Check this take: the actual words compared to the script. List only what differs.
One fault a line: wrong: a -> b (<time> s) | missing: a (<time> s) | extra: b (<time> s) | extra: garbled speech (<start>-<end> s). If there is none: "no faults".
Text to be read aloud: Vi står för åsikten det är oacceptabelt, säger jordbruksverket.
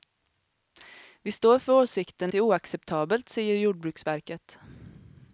no faults